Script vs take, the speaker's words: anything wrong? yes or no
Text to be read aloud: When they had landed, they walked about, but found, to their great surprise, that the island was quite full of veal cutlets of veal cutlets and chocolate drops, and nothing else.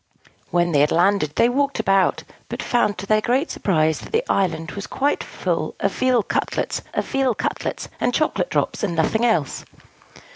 no